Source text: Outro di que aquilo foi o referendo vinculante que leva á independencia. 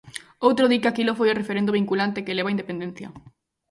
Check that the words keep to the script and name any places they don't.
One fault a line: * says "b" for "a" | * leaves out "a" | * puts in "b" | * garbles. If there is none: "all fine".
all fine